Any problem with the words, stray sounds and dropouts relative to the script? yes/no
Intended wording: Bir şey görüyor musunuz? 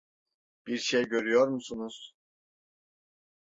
no